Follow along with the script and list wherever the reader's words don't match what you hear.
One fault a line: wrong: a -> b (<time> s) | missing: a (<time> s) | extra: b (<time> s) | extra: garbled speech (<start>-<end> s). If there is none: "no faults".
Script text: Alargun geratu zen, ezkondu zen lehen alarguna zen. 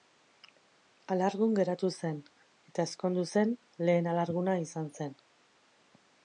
extra: eta (2.7 s)
extra: izan (4.6 s)